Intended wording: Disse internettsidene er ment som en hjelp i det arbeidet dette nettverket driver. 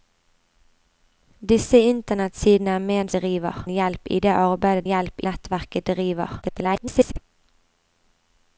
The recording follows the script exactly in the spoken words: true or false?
false